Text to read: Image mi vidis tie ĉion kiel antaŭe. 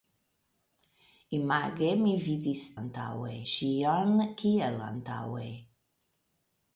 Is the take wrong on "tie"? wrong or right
wrong